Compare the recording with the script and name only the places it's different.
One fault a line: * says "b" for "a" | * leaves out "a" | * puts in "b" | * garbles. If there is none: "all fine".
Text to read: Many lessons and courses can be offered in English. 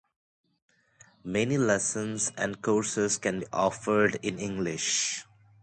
all fine